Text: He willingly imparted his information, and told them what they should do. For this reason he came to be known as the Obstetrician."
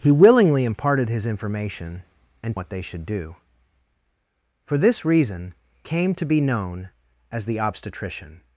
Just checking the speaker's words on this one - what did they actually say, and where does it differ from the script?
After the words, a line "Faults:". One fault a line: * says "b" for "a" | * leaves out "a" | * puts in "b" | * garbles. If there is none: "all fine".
He willingly imparted his information, and what they should do. For this reason came to be known as the Obstetrician."
Faults:
* leaves out "told them"
* leaves out "he"